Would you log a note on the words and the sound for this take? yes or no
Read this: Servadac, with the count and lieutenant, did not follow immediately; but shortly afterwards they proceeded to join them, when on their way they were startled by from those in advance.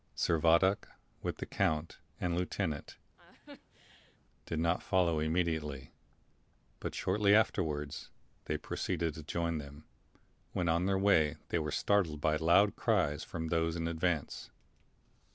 yes